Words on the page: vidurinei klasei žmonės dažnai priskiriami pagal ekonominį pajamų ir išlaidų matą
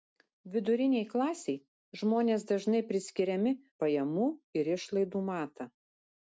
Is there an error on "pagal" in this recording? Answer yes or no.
yes